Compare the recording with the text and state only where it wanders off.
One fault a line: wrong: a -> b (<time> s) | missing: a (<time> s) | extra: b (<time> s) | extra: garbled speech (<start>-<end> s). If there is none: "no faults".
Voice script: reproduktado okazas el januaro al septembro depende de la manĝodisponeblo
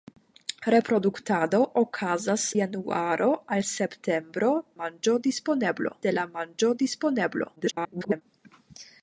missing: el (2.5 s)
wrong: depende -> manĝodisponeblo (4.8 s)
extra: garbled speech (7.6-8.2 s)